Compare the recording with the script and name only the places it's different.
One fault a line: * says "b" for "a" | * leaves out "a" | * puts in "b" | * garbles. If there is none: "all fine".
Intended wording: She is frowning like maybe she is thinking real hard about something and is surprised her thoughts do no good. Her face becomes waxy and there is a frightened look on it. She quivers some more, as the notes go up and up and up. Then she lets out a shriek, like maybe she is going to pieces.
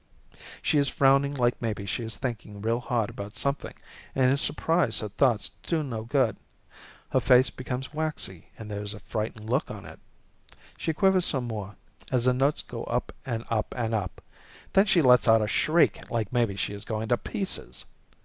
all fine